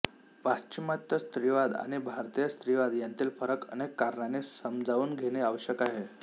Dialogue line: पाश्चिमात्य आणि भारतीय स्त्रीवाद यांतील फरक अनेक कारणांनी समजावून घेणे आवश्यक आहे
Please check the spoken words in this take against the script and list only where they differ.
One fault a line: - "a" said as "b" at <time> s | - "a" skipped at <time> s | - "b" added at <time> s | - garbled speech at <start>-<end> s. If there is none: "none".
- "स्त्रीवाद" added at 1.2 s